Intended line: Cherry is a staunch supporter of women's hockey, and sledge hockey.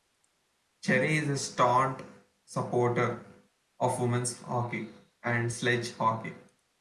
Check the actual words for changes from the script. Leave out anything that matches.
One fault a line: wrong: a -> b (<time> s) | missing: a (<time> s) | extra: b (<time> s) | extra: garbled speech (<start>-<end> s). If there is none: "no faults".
no faults